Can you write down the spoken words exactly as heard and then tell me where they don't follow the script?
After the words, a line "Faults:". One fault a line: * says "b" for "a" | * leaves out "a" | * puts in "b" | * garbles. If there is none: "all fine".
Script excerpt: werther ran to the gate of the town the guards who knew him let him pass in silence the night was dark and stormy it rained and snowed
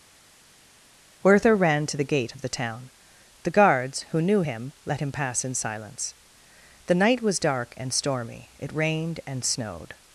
werther ran to the gate of the town the guards who knew him let him pass in silence the night was dark and stormy it rained and snowed
Faults:
all fine